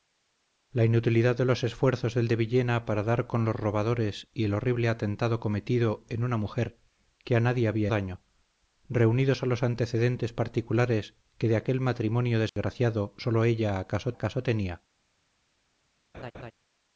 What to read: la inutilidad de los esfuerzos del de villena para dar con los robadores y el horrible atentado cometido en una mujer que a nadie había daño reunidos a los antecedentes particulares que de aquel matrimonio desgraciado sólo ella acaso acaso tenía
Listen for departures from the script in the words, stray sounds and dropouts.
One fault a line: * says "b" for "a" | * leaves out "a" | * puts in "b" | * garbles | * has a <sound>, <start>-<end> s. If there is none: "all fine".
* has a dropout, 12.5-12.6 s
* has a laugh, 16.1-16.5 s